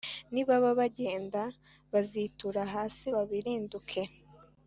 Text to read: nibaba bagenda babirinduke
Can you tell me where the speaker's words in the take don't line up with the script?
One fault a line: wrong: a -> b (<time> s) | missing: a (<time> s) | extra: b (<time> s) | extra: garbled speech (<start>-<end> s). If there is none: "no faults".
extra: bazitura hasi (1.9 s)